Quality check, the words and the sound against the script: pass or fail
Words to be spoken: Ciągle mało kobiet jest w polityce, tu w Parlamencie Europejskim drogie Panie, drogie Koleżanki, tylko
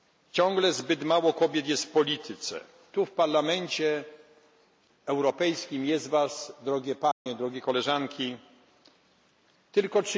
fail